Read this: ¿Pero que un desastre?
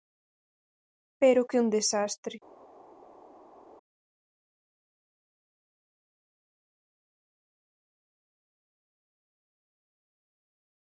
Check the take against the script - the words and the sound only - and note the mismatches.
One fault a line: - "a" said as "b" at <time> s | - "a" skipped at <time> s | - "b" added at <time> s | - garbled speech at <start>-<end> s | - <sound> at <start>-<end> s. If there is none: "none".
none